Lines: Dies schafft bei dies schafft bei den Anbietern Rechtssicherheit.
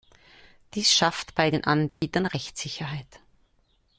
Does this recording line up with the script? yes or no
no